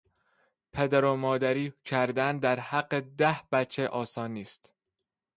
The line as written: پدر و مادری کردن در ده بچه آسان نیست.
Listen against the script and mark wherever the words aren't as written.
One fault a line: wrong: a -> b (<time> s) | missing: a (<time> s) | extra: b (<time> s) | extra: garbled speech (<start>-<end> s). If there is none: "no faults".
extra: حق (2.6 s)